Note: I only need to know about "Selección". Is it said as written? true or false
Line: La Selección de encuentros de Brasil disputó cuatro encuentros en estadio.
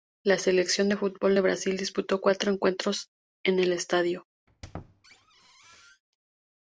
true